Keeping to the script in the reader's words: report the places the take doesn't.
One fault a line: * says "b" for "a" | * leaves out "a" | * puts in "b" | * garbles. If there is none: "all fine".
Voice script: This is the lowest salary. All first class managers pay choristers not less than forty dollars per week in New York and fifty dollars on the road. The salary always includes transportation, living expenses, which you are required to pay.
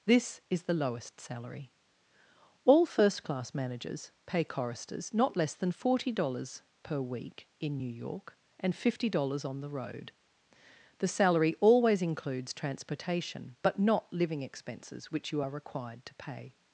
* puts in "but not"